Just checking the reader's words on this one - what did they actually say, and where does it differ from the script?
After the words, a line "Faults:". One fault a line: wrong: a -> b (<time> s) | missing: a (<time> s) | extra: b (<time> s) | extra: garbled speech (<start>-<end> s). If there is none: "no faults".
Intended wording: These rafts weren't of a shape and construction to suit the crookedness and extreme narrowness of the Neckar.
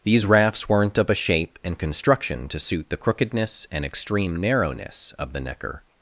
These rafts weren't of a shape and construction to suit the crookedness and extreme narrowness of the Neckar.
Faults:
no faults